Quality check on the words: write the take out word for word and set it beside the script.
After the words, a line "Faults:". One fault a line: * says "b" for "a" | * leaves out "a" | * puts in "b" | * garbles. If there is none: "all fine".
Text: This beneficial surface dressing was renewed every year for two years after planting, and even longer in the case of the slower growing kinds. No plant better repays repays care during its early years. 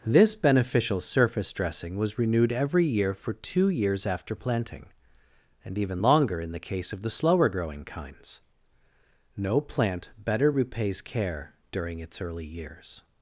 This beneficial surface dressing was renewed every year for two years after planting, and even longer in the case of the slower growing kinds. No plant better repays care during its early years.
Faults:
* leaves out "repays"